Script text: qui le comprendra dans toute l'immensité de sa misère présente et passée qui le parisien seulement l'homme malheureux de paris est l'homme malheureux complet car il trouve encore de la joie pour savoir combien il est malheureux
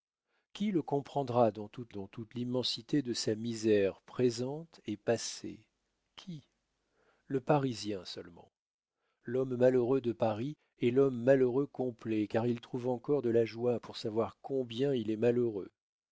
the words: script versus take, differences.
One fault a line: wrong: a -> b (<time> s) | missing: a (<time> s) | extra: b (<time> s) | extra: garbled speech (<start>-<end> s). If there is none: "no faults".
extra: dans toute (1.9 s)